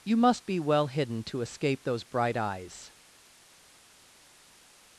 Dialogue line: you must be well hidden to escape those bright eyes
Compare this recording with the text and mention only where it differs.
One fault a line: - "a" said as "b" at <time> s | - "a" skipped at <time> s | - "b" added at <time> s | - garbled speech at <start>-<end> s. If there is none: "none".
none